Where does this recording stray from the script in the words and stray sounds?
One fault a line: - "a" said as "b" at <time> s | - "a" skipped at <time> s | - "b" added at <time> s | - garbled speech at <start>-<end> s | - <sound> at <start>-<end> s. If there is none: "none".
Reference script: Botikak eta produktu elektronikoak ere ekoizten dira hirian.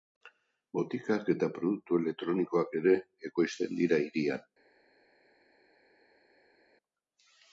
none